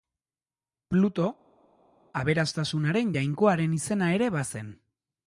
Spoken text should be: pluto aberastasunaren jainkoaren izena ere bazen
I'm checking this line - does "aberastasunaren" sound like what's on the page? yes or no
yes